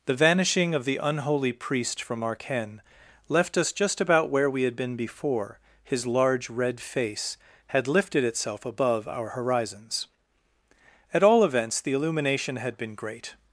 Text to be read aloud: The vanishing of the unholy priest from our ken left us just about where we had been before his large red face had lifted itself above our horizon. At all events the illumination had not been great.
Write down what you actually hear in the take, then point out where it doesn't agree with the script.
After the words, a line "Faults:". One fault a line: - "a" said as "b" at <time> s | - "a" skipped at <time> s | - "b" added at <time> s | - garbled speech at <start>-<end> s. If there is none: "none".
The vanishing of the unholy priest from our ken left us just about where we had been before his large red face had lifted itself above our horizons. At all events the illumination had been great.
Faults:
- "horizon" said as "horizons" at 9.3 s
- "not" skipped at 12.8 s